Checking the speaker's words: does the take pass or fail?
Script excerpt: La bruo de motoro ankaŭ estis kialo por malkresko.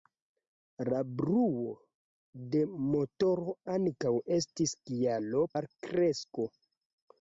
fail